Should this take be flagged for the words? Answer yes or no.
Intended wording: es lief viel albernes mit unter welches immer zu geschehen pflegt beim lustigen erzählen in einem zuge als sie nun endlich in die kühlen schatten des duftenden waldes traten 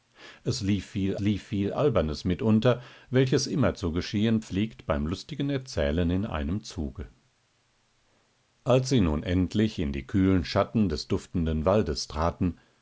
yes